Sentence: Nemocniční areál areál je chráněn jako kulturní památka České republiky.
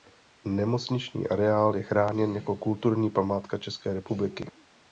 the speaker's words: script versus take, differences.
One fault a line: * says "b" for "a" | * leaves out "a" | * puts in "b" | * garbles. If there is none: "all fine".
* leaves out "areál"